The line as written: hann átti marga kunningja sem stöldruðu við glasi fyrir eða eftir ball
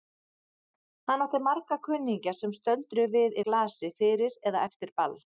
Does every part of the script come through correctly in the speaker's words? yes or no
yes